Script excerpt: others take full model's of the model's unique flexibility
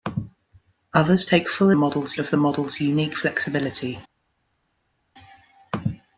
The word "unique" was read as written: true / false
true